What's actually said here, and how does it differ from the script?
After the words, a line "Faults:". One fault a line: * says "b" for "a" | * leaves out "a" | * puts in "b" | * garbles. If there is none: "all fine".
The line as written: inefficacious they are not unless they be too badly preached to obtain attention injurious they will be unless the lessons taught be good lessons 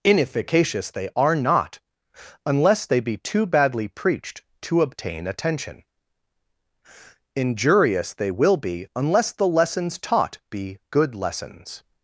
inefficacious they are not unless they be too badly preached to obtain attention injurious they will be unless the lessons taught be good lessons
Faults:
all fine